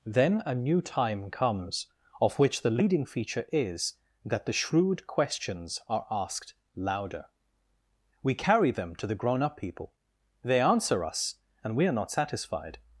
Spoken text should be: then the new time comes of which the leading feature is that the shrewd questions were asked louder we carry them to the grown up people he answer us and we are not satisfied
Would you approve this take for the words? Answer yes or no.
no